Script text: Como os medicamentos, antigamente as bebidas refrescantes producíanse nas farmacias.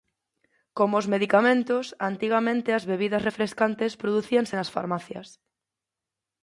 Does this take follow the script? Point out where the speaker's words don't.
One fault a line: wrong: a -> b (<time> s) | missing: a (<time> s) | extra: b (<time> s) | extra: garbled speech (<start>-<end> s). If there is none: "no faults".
no faults